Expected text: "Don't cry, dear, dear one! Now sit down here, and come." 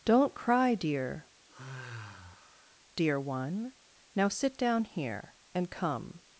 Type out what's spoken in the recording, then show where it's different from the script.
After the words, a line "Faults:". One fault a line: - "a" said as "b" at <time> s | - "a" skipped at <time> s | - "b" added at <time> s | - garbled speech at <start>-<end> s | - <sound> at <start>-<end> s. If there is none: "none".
"Don't cry, dear, dear one! Now sit down here, and come."
Faults:
- sigh at 1.5-2.8 s